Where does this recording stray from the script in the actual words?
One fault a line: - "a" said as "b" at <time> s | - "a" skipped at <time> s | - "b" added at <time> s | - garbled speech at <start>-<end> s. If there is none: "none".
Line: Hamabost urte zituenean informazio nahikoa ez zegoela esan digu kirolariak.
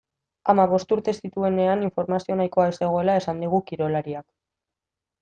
none